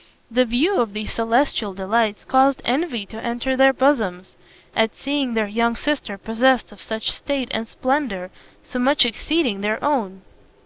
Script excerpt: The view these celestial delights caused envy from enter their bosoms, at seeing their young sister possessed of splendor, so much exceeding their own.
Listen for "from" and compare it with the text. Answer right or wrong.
wrong